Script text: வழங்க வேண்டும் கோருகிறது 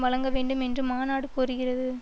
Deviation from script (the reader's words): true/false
true